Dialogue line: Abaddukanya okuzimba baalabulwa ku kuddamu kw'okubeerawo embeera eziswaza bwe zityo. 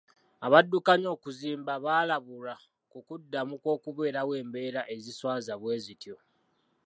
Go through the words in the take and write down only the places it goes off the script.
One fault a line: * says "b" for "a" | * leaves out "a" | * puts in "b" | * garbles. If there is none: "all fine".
all fine